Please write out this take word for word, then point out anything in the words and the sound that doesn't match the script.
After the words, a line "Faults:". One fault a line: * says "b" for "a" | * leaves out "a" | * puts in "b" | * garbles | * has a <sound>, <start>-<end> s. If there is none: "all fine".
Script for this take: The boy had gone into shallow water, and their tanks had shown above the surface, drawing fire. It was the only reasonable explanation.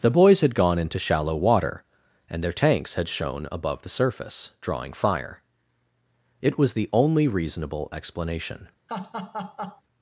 The boys had gone into shallow water, and their tanks had shown above the surface, drawing fire. It was the only reasonable explanation.
Faults:
* says "boys" for "boy"
* has a laugh, 8.9-9.8 s